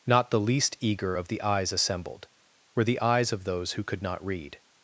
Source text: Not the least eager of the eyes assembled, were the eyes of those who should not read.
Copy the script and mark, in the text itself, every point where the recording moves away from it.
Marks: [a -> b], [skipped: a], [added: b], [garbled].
Not the least eager of the eyes assembled, were the eyes of those who [should -> could] not read.